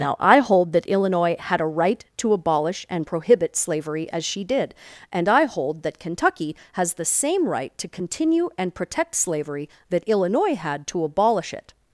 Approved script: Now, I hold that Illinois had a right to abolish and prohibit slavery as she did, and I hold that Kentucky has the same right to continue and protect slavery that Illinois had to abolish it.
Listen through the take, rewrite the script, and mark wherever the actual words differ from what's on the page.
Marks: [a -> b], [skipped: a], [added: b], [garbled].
Now, I hold that Illinois had a right to abolish and prohibit slavery as she did, and I hold that Kentucky has the same right to continue and protect slavery that Illinois had to abolish it.